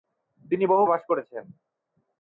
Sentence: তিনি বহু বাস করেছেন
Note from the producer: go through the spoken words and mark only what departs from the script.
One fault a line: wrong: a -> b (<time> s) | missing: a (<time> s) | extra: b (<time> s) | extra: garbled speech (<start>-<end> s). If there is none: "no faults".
no faults